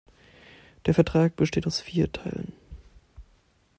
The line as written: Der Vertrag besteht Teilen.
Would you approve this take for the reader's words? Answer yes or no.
no